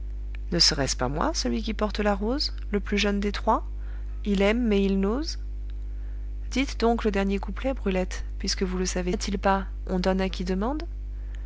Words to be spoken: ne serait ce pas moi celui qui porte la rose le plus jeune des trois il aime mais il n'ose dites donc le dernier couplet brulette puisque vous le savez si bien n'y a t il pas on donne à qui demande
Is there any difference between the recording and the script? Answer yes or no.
yes